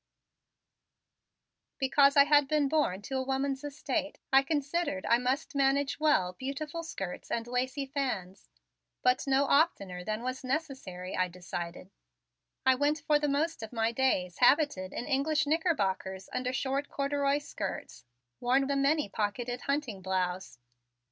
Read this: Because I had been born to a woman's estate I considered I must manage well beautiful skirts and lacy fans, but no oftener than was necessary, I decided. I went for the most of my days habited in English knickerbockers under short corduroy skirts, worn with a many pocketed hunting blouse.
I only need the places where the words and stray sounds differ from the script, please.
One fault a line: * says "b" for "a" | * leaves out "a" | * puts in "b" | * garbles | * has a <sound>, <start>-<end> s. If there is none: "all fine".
* leaves out "with"